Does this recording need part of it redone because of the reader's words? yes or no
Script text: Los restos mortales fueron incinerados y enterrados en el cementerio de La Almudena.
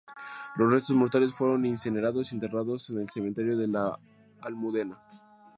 no